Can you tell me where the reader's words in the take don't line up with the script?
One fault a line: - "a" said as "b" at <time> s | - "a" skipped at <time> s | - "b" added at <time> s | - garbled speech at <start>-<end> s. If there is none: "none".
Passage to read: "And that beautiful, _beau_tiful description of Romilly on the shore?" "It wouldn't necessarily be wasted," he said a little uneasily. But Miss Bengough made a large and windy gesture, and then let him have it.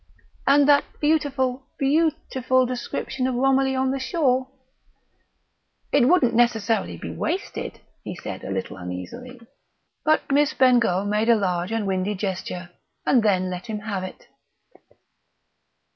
none